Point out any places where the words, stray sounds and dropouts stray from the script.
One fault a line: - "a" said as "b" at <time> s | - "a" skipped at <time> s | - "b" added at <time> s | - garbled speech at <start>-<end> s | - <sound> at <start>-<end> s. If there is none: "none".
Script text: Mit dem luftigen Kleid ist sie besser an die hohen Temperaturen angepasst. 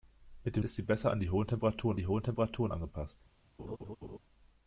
- "luftigen Kleid" skipped at 0.7 s
- "die hohen Temperaturen" added at 2.0 s
- laugh at 3.6-4.2 s